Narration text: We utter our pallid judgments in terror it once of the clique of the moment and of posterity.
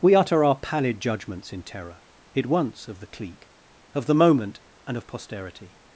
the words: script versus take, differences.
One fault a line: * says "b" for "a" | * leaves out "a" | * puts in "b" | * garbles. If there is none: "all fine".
all fine